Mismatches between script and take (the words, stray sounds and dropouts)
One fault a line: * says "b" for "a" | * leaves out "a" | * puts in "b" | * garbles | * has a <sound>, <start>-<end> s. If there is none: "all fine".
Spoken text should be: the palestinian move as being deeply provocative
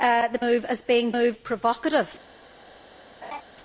* leaves out "palestinian"
* says "move" for "deeply"
* has a laugh, 3.2-3.4 s